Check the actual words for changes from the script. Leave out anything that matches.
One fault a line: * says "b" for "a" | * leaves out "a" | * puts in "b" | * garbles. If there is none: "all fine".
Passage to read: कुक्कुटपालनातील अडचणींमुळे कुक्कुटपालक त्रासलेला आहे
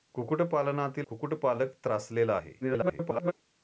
* leaves out "अडचणींमुळे"
* garbles